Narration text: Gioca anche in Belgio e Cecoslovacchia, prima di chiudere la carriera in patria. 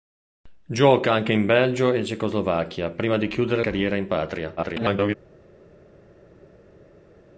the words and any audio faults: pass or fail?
fail